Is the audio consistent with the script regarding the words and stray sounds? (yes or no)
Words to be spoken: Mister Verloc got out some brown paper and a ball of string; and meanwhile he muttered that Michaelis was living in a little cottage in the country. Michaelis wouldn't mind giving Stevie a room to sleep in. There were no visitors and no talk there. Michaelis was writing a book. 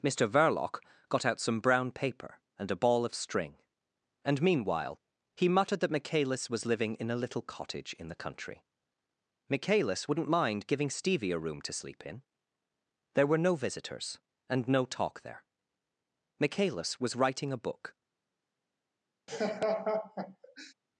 no